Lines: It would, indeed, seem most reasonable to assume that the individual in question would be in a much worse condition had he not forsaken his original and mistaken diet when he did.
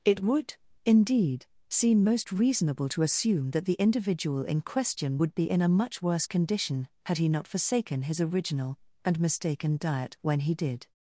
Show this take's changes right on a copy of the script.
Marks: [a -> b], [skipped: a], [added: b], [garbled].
It would, indeed, seem most reasonable to assume that the individual in question would be in a much worse condition had he not forsaken his original and mistaken diet when he did.